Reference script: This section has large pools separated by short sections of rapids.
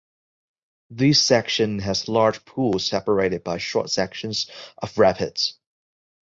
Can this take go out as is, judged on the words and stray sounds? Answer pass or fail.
pass